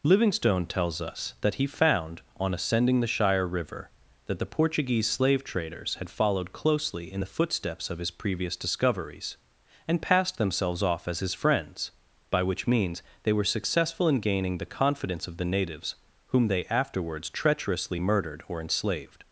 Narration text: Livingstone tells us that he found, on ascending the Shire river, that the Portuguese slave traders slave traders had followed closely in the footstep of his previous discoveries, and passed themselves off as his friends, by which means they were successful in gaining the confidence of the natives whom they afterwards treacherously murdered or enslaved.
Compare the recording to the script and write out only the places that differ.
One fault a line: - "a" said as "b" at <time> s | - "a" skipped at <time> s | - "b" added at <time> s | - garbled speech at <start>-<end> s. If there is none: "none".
- "slave traders" skipped at 6.0 s
- "footstep" said as "footsteps" at 7.3 s